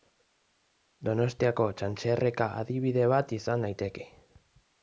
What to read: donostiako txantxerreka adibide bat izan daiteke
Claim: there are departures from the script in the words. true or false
false